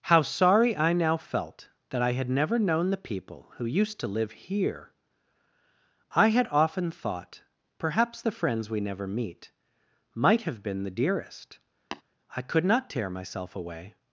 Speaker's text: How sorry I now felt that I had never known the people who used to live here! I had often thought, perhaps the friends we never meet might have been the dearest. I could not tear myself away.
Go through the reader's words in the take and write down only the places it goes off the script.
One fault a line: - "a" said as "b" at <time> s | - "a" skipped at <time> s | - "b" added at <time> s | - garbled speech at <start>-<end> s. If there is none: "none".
none